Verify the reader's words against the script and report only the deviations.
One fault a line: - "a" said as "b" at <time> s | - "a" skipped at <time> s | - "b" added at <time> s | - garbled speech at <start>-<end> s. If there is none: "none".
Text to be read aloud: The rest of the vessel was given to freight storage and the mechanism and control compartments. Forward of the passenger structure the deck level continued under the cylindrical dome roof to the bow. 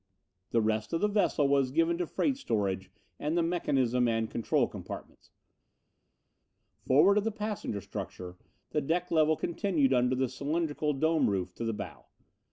none